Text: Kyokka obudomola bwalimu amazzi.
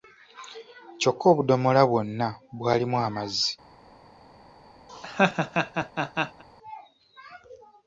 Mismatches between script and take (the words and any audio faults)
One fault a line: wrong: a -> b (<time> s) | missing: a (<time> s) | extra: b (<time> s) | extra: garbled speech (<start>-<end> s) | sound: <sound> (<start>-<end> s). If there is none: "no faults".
extra: bwonna (1.9 s)
sound: laugh (4.9-6.4 s)